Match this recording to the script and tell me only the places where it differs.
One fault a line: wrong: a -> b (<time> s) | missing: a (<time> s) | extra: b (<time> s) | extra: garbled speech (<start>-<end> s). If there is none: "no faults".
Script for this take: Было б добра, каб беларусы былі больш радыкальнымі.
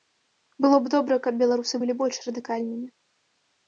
no faults